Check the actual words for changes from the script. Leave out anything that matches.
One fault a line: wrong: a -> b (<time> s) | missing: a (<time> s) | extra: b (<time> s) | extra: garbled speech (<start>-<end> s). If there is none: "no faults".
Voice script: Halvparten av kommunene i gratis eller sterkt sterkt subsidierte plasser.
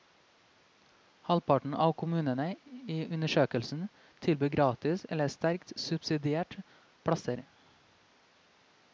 extra: undersøkelsen tilbyr (3.2 s)
missing: sterkt (5.7 s)